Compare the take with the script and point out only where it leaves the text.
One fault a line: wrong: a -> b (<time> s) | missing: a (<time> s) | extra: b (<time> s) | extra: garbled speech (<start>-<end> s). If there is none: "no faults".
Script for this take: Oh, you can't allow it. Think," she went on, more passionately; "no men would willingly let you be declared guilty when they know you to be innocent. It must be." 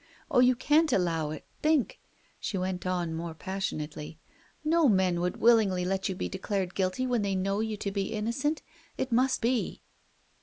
no faults